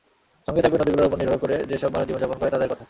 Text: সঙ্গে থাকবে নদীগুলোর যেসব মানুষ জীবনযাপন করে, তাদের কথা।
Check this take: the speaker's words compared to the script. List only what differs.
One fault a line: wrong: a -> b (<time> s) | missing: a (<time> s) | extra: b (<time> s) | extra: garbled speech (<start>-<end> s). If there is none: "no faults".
extra: ওপর নির্ভর করে (1.1 s)